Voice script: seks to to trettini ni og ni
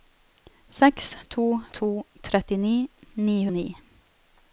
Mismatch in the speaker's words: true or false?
false